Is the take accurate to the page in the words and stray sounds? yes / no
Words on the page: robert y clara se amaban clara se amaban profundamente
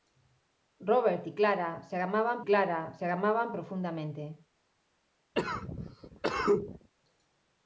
no